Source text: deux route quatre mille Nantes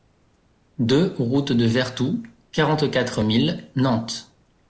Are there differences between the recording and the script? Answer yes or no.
yes